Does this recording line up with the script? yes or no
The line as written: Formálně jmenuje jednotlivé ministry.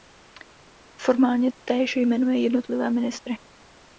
no